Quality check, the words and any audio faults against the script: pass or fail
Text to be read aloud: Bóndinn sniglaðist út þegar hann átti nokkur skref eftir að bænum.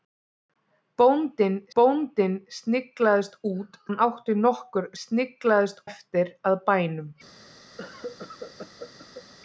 fail